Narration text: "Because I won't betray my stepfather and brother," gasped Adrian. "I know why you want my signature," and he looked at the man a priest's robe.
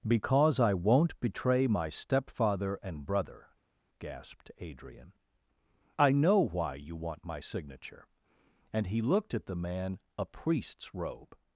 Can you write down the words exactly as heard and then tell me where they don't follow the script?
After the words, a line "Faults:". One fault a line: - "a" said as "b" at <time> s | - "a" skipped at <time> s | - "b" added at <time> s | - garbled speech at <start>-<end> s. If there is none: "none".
"Because I won't betray my stepfather and brother," gasped Adrian. "I know why you want my signature," and he looked at the man a priest's robe.
Faults:
none